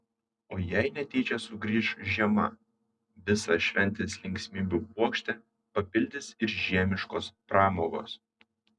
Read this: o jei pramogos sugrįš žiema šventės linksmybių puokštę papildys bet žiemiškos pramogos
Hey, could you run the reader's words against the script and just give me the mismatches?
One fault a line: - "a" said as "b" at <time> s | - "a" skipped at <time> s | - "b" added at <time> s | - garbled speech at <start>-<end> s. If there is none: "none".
- "pramogos" said as "netyčia" at 0.9 s
- "visą" added at 3.3 s
- "bet" said as "ir" at 6.5 s